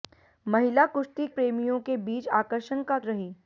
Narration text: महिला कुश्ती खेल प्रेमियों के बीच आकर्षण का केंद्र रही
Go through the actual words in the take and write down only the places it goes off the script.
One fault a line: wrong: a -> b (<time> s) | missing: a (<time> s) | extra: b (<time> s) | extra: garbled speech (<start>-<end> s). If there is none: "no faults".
missing: खेल (1.3 s)
missing: केंद्र (3.0 s)